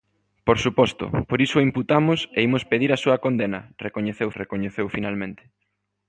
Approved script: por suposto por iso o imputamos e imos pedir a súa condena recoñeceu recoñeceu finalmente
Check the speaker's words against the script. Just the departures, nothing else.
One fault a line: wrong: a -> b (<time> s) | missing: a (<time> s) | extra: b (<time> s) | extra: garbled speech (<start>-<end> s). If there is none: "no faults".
no faults